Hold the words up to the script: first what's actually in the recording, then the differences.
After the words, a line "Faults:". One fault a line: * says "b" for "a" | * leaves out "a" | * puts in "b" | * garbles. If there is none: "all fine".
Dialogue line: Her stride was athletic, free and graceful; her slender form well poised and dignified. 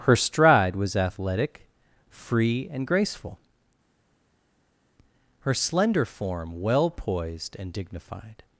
Her stride was athletic, free and graceful; her slender form well poised and dignified.
Faults:
all fine